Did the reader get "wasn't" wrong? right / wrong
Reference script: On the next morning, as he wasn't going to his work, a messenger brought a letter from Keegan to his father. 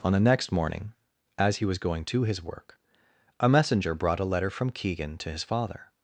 wrong